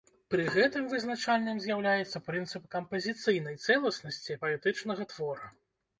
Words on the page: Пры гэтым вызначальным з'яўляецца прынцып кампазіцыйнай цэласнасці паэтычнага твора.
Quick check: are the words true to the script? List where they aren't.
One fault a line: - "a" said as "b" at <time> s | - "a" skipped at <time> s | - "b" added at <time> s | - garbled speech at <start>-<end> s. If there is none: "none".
none